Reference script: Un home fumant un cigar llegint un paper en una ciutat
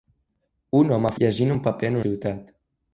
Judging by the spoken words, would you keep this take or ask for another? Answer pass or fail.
fail